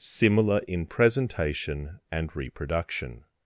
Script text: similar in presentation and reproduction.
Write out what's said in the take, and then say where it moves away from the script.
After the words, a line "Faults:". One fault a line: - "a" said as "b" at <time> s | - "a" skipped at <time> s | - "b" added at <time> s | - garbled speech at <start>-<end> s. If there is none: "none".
similar in presentation and reproduction.
Faults:
none